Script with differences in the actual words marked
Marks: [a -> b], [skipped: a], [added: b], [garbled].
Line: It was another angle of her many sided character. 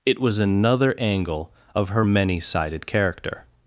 It was another angle of her many sided character.